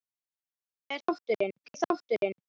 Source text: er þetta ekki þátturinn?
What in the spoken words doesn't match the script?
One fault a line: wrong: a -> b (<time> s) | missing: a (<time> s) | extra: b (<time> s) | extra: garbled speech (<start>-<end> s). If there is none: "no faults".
wrong: þetta -> þátturinn (1.0 s)